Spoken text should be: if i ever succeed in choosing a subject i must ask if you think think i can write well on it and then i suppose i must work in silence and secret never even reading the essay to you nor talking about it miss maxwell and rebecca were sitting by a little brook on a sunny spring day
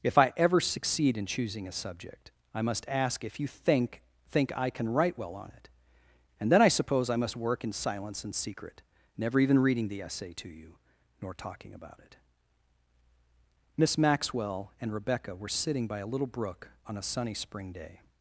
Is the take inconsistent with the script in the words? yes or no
no